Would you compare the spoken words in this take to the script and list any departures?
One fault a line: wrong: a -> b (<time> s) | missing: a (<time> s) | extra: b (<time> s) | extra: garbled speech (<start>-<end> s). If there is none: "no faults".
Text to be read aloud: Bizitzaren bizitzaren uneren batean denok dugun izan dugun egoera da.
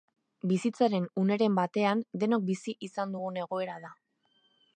missing: bizitzaren (1.1 s)
wrong: dugun -> bizi (2.5 s)